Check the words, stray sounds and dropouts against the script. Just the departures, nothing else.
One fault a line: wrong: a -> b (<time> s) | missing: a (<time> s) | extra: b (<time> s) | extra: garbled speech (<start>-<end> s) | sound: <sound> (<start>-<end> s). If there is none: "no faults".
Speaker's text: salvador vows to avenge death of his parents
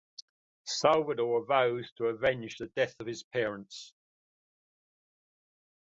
extra: the (2.6 s)